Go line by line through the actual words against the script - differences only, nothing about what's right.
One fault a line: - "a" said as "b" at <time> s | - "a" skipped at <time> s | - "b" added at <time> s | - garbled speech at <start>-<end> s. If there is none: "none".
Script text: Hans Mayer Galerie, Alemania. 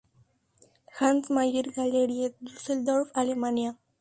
- "Düsseldorf" added at 2.4 s